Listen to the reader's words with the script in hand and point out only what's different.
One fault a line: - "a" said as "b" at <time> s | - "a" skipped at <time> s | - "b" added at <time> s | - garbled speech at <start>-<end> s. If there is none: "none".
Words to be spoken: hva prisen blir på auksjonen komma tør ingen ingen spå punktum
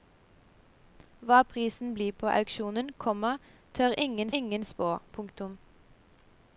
none